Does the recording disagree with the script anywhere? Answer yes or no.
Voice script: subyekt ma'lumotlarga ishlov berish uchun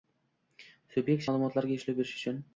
no